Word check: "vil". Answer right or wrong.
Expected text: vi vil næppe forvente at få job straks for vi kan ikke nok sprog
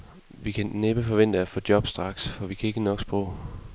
wrong